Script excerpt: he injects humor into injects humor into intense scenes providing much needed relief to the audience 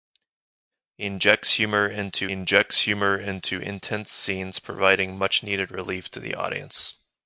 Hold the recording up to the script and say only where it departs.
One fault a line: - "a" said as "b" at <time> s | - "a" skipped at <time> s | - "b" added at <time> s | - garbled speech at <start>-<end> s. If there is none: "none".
none